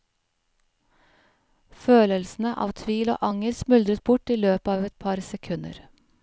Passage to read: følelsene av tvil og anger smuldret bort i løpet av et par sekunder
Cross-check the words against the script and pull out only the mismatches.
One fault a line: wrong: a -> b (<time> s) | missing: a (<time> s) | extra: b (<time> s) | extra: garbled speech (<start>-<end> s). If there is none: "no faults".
no faults